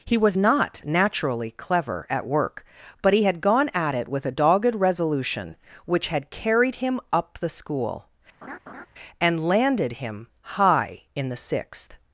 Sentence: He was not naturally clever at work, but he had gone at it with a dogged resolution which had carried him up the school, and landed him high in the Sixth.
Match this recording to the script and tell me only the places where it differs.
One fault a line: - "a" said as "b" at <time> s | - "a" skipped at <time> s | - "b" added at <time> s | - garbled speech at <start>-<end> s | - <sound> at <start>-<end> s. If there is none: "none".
- laugh at 8.4-8.9 s